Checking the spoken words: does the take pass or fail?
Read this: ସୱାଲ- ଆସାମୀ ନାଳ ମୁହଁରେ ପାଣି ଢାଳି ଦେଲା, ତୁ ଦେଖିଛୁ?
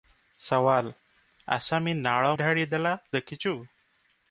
fail